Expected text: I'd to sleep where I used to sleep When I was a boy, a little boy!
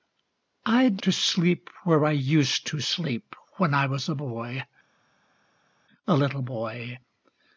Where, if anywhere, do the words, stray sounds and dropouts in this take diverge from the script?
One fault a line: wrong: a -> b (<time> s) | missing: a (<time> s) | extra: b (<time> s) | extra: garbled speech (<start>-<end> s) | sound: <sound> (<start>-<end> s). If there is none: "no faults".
no faults